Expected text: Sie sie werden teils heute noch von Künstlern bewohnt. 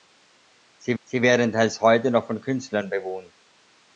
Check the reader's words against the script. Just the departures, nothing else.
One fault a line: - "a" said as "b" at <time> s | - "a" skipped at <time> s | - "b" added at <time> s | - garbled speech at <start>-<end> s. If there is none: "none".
none